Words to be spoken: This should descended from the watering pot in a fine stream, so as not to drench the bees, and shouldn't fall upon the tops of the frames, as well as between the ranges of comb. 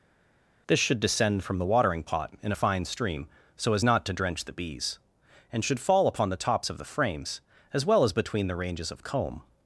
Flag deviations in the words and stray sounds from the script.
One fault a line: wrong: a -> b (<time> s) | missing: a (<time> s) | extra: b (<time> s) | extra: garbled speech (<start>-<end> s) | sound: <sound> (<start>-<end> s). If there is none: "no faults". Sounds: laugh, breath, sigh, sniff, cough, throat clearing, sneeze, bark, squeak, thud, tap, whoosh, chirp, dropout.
wrong: descended -> descend (1.0 s)
wrong: shouldn't -> should (5.6 s)